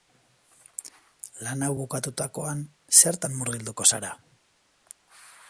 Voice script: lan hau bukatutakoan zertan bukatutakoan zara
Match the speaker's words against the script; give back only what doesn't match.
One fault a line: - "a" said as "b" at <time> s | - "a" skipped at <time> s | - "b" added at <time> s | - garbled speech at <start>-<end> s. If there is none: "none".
- "bukatutakoan" said as "murgilduko" at 3.4 s